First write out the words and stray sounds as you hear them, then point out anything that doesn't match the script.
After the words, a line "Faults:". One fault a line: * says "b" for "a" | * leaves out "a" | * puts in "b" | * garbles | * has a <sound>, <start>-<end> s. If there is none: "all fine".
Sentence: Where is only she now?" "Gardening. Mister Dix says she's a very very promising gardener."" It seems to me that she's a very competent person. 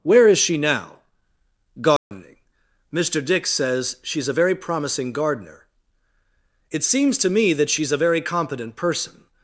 Where is she now?" "Gardening. Mister Dix says she's a very promising gardener."" It seems to me that she's a very competent person.
Faults:
* leaves out "only"
* has a dropout, 2.0-2.1 s
* leaves out "very"